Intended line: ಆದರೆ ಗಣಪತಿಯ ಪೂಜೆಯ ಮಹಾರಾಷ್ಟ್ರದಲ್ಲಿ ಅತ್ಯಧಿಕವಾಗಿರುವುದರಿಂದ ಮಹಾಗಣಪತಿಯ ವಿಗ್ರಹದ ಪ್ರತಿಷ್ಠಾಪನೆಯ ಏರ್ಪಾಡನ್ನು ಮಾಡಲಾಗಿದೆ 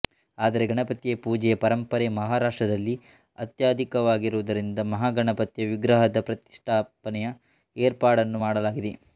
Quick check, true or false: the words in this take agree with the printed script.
false